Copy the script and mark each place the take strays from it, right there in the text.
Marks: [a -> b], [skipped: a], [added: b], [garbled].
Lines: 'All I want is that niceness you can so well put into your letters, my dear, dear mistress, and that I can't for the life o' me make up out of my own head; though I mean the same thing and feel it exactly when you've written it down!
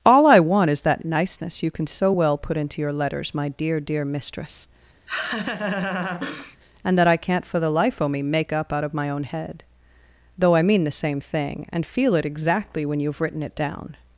'All I want is that niceness you can so well put into your letters, my dear, dear mistress, and that I can't for the life o' me make up out of my own head; though I mean the same thing and feel it exactly when you've written it down!